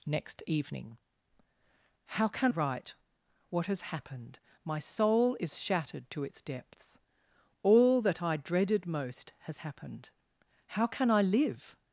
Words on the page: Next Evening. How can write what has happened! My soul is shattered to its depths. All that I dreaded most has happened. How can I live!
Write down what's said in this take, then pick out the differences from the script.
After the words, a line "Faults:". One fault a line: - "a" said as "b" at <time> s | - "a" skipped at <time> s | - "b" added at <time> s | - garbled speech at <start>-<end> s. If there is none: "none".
Next Evening. How can write what has happened! My soul is shattered to its depths. All that I dreaded most has happened. How can I live!
Faults:
none